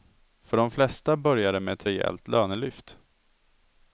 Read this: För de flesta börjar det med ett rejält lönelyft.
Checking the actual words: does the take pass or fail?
pass